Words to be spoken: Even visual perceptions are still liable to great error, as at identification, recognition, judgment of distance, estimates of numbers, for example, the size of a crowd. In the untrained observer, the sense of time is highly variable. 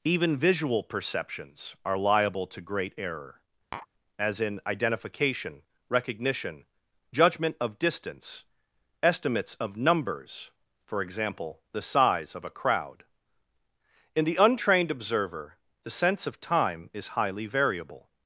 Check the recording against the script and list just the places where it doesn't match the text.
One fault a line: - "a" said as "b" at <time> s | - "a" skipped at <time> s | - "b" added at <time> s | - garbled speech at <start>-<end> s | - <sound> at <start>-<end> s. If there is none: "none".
- "still" skipped at 2.0 s
- tap at 3.7-3.9 s
- "at" said as "in" at 4.4 s